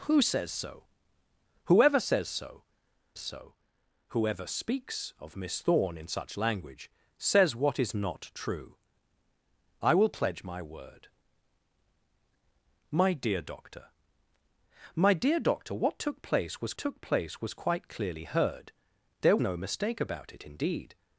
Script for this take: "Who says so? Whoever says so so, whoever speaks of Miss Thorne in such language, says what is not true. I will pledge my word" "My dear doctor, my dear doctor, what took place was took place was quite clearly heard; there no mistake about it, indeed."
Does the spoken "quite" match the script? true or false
true